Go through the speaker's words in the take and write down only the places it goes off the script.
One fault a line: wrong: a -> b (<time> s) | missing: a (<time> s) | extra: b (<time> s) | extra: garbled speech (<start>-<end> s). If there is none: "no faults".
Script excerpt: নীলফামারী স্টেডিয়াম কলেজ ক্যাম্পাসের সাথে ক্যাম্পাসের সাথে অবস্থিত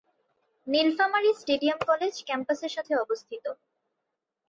missing: ক্যাম্পাসের সাথে (2.9 s)